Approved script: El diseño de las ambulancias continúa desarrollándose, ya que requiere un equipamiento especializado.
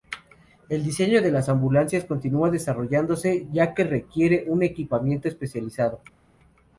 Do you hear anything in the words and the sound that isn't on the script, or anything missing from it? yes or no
no